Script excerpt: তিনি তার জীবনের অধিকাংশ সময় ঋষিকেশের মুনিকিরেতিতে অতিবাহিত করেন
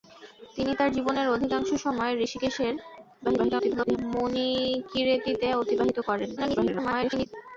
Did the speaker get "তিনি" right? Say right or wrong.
right